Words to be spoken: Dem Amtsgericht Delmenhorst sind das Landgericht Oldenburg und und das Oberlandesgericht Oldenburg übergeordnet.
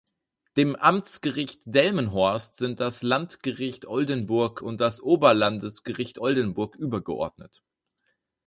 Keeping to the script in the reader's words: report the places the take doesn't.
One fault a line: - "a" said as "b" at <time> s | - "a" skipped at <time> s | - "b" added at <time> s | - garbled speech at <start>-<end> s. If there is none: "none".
- "und" skipped at 4.8 s